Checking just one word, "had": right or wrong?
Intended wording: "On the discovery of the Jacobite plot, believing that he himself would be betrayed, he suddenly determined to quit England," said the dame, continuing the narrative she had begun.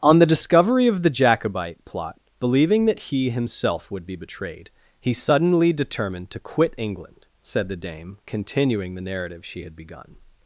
right